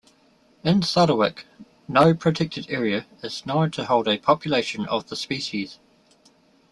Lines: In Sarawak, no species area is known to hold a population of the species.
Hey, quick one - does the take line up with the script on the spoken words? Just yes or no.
no